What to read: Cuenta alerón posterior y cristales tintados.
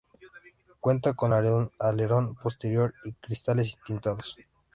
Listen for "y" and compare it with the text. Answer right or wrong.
right